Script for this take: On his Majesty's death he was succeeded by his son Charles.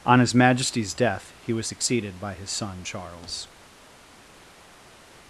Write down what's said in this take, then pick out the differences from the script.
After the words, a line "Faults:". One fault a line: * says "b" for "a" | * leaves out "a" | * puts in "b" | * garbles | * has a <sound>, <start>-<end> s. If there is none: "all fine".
On his Majesty's death he was succeeded by his son Charles.
Faults:
all fine